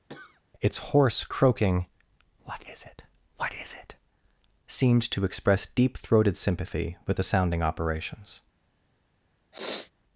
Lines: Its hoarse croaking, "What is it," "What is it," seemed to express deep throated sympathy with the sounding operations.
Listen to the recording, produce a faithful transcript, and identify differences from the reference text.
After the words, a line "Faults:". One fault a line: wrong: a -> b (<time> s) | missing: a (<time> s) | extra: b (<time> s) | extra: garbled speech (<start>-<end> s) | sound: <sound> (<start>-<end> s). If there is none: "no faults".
Its hoarse croaking, "What is it," "What is it," seemed to express deep throated sympathy with the sounding operations.
Faults:
sound: cough (0.1-0.4 s)
sound: sniff (9.5-9.9 s)